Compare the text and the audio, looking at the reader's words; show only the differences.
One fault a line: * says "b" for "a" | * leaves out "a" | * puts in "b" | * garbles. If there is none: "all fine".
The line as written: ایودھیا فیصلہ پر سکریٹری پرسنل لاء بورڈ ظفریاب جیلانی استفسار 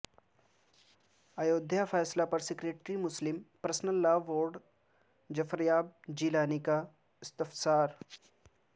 * puts in "مسلم"
* puts in "کا"